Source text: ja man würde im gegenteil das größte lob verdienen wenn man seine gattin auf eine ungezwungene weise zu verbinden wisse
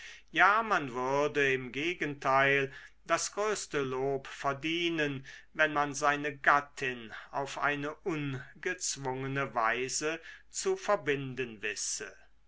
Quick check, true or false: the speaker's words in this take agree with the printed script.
true